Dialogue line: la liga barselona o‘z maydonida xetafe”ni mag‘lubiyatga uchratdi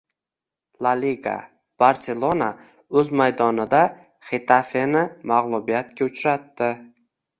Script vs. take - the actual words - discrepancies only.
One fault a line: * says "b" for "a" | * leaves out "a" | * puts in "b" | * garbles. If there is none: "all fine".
all fine